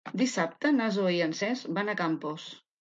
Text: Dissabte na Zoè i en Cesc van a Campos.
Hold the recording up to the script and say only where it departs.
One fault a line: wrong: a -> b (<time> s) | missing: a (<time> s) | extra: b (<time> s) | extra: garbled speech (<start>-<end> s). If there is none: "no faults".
no faults